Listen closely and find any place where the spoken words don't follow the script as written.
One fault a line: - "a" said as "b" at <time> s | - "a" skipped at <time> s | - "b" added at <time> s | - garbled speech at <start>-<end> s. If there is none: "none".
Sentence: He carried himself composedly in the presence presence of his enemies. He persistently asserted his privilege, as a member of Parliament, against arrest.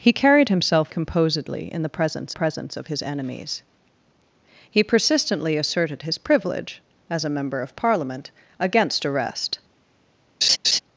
none